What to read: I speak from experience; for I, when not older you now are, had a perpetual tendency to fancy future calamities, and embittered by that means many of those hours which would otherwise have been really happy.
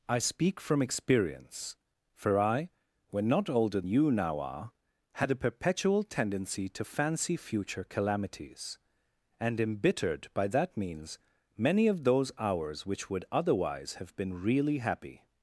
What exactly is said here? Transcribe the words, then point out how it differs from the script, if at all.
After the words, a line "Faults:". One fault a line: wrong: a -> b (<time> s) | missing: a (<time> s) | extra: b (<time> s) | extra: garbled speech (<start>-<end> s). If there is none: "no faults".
I speak from experience; for I, when not older you now are, had a perpetual tendency to fancy future calamities, and embittered by that means many of those hours which would otherwise have been really happy.
Faults:
no faults